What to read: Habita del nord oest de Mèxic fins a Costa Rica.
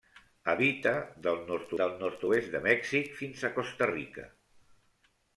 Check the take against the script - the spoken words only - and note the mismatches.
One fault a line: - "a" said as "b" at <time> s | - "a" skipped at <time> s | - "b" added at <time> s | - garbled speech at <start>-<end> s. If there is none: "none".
- "del nord" added at 1.8 s